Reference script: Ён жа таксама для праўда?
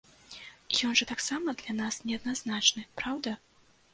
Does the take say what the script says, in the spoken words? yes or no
no